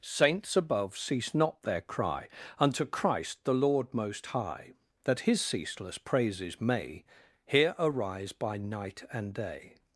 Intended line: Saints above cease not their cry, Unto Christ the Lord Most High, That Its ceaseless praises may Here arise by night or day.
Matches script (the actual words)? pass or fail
fail